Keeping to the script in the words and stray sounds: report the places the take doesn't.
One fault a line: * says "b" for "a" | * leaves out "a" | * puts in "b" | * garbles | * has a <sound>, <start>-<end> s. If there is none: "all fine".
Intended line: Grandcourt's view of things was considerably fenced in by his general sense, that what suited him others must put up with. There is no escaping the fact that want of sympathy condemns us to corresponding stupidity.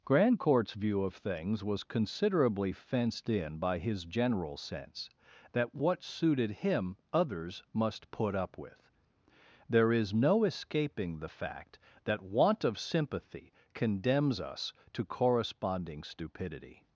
all fine